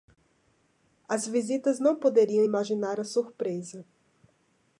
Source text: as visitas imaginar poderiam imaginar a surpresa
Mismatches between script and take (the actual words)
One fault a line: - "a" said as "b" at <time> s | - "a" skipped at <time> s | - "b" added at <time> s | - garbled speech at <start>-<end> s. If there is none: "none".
- "imaginar" said as "não" at 1.8 s